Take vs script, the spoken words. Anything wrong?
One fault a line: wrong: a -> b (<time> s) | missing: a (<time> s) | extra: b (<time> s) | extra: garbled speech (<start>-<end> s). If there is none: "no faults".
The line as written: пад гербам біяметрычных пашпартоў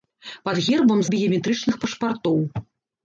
no faults